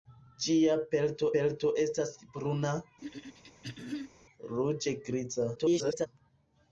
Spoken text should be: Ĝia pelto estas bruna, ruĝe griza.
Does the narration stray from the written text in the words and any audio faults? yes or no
yes